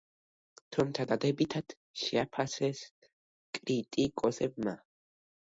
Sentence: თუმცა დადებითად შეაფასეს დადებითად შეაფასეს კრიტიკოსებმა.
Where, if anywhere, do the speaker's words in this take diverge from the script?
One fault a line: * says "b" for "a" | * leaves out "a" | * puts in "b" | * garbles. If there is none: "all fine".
* leaves out "დადებითად შეაფასეს"